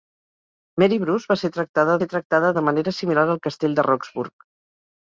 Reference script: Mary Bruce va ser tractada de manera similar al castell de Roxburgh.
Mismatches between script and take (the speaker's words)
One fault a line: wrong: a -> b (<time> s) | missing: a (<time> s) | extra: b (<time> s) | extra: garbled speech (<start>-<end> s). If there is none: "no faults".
extra: ser tractada (2.0 s)